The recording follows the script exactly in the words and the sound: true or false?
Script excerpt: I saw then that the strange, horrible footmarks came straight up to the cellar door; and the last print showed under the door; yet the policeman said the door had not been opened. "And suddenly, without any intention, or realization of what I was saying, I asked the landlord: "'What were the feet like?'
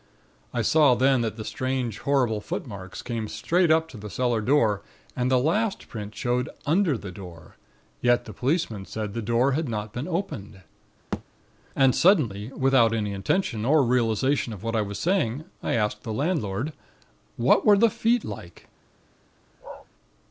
false